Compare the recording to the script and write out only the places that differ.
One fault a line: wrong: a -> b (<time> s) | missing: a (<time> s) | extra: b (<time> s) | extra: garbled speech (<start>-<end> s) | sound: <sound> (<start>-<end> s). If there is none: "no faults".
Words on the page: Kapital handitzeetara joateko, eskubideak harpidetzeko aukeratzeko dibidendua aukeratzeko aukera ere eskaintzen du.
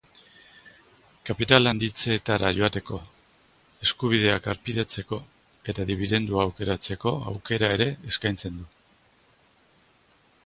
wrong: aukeratzeko -> eta (5.7 s)